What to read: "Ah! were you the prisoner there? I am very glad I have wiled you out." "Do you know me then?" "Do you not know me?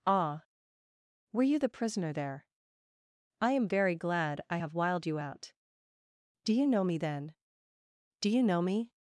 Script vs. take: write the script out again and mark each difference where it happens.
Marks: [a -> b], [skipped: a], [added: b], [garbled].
"Ah! were you the prisoner there? I am very glad I have wiled you out." "Do you know me then?" "Do you [skipped: not] know me?